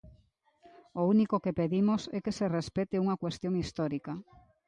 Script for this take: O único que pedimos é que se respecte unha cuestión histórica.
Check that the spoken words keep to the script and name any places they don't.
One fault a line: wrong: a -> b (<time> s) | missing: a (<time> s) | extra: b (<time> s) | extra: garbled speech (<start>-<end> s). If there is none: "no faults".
no faults